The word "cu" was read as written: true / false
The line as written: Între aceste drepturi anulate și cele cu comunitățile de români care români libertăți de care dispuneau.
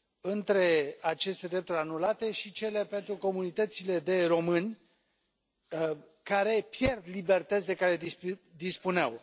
false